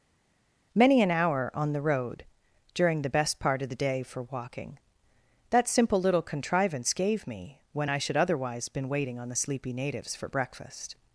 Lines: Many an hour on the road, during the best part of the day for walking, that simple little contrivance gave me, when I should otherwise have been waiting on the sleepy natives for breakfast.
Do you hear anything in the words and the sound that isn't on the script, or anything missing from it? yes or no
yes